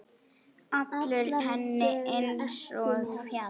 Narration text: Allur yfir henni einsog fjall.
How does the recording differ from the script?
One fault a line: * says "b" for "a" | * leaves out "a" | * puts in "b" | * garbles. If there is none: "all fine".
* leaves out "yfir"